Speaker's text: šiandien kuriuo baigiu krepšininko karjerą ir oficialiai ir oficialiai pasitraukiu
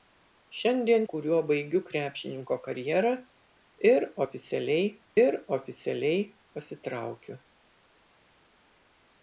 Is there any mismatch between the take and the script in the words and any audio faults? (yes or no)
no